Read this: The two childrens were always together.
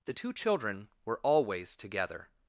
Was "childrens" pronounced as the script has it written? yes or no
no